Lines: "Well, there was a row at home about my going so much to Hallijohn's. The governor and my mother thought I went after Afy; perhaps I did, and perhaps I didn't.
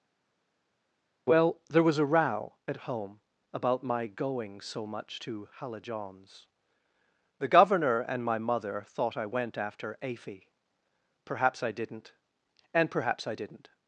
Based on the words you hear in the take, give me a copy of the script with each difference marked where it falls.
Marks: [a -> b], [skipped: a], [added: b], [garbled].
"Well, there was a row at home about my going so much to Hallijohn's. The governor and my mother thought I went after Afy; perhaps I [did, -> didn't] and perhaps I didn't.